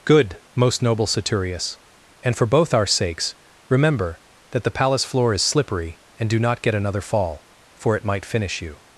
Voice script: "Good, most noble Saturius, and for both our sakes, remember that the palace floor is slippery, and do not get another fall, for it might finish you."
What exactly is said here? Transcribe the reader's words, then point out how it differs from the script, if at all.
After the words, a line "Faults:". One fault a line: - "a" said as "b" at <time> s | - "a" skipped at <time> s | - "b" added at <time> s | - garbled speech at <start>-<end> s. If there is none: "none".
"Good, most noble Saturius, and for both our sakes, remember that the palace floor is slippery, and do not get another fall, for it might finish you."
Faults:
none